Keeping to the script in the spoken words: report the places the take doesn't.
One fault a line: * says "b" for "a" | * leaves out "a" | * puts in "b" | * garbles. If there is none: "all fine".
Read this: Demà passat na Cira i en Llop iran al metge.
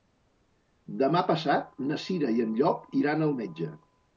all fine